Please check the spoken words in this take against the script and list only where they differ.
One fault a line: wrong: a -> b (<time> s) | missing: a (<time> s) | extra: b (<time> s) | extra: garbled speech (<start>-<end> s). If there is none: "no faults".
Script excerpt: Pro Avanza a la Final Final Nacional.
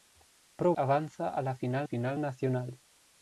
no faults